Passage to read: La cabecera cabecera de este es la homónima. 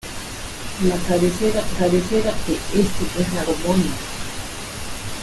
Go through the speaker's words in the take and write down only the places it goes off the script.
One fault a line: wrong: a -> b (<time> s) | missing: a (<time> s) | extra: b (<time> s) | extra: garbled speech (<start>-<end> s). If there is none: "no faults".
no faults